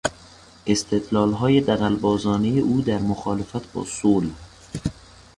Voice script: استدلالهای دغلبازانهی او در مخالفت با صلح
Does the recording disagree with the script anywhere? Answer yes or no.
no